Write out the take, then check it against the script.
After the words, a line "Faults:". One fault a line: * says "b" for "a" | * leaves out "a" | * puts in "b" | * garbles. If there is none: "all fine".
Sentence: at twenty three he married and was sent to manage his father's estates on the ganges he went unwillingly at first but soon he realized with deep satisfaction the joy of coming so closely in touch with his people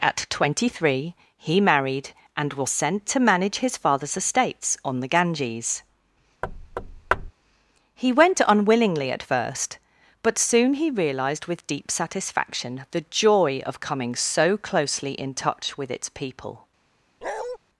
at twenty three he married and was sent to manage his father's estates on the ganges he went unwillingly at first but soon he realized with deep satisfaction the joy of coming so closely in touch with its people
Faults:
* says "its" for "his"